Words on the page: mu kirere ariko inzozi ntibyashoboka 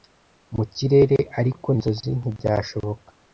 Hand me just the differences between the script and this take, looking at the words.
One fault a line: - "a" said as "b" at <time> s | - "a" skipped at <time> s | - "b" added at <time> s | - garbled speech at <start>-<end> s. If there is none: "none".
none